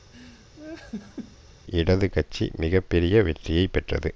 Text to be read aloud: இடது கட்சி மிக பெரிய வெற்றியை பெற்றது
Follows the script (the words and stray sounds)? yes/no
no